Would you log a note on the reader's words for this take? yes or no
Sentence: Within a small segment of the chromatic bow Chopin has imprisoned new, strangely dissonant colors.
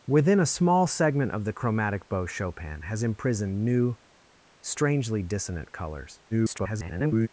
yes